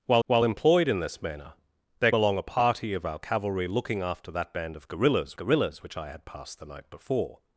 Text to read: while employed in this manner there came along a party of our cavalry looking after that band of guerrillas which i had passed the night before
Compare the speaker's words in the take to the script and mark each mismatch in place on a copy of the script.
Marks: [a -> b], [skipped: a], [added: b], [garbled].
while [added: while] employed in this manner there [skipped: came] along a party of our cavalry looking after that band of guerrillas [added: guerrillas] which i had passed the night before